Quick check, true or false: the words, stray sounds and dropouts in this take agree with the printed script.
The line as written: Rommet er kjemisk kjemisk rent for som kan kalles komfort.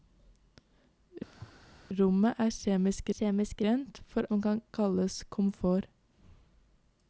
false